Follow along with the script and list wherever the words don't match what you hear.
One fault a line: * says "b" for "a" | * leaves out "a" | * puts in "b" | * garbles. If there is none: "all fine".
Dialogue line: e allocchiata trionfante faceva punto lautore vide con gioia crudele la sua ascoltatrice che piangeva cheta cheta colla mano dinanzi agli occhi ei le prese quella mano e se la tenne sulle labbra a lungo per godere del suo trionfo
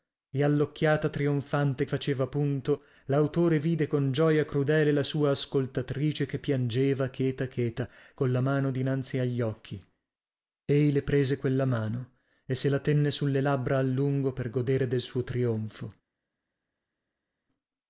all fine